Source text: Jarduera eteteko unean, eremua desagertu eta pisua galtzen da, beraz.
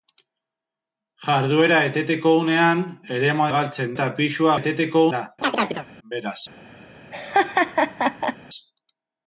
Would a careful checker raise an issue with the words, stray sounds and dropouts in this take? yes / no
yes